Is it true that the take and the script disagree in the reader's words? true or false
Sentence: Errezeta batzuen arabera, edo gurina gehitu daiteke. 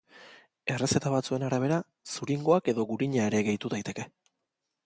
true